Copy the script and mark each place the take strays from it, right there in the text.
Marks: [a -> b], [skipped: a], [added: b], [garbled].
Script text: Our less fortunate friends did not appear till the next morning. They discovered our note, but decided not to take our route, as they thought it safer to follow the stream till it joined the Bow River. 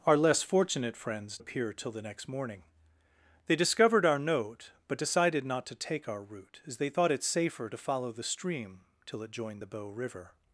Our less fortunate friends [skipped: did not] appear till the next morning. They discovered our note, but decided not to take our route, as they thought it safer to follow the stream till it joined the Bow River.